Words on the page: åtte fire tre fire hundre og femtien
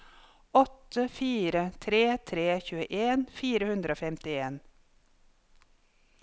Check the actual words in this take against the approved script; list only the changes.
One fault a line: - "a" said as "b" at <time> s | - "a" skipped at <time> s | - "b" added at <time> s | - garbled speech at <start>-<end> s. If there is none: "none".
- "tre tjueen" added at 2.3 s